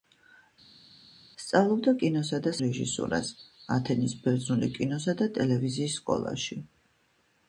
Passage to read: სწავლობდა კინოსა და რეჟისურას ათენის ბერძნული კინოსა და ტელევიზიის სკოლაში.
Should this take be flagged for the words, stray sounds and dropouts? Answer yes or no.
no